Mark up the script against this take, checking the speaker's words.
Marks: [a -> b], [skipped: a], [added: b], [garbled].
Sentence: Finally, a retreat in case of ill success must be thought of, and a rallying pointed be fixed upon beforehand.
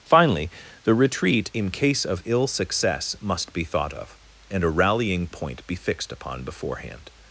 Finally, [a -> the] retreat in case of ill success must be thought of, and a rallying [pointed -> point] be fixed upon beforehand.